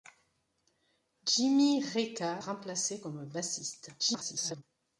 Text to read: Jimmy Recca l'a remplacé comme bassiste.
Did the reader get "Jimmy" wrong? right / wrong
right